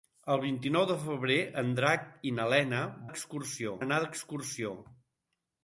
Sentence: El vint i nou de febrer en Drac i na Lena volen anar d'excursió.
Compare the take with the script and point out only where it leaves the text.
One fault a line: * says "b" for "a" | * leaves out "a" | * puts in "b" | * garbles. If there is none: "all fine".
* says "d'excursió" for "volen"